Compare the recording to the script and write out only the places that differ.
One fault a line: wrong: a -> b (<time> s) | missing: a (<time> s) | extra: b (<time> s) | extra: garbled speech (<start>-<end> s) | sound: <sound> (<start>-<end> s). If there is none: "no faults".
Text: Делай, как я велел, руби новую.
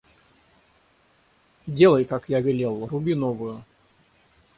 no faults